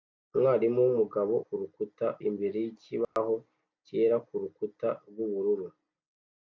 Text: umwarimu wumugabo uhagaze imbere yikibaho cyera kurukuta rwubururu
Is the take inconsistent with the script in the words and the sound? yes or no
yes